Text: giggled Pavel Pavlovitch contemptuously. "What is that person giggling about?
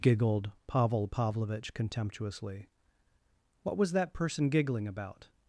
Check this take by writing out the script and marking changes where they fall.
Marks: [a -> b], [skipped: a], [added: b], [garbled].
giggled Pavel Pavlovitch contemptuously. "What [is -> was] that person giggling about?